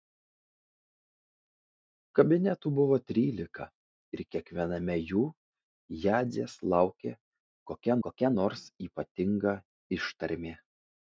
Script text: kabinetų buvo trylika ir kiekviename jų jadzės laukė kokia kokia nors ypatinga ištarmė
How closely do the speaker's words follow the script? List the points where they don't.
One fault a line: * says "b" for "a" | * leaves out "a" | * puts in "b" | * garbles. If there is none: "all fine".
all fine